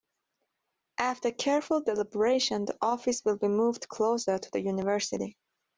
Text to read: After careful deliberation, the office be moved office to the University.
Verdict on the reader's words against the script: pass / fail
fail